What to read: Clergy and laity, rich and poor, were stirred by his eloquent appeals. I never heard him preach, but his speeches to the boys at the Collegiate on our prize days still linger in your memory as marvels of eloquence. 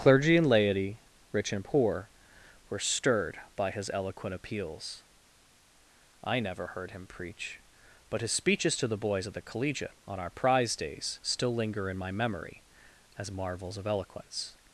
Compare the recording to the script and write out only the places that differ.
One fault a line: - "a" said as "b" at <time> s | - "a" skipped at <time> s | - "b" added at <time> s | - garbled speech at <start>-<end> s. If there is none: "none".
- "your" said as "my" at 12.0 s